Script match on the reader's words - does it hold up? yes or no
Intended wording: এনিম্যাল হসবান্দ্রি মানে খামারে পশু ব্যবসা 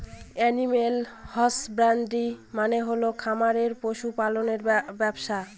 no